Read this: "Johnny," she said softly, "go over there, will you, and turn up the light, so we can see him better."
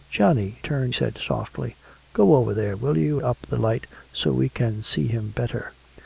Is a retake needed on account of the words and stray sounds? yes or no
yes